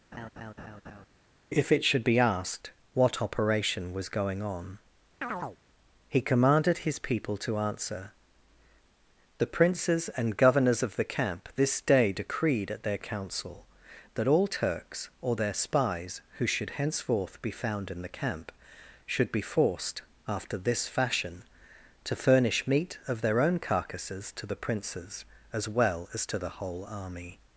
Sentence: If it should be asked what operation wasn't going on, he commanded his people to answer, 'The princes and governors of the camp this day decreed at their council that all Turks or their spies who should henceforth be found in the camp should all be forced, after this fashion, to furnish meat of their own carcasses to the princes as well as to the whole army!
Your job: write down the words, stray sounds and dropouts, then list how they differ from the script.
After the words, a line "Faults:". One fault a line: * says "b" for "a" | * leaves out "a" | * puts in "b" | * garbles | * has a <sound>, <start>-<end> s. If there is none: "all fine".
If it should be asked what operation was going on, he commanded his people to answer, 'The princes and governors of the camp this day decreed at their council that all Turks or their spies who should henceforth be found in the camp should be forced, after this fashion, to furnish meat of their own carcasses to the princes as well as to the whole army!
Faults:
* has a laugh, 0.1-1.1 s
* says "was" for "wasn't"
* has a chirp, 5.2-5.6 s
* leaves out "all"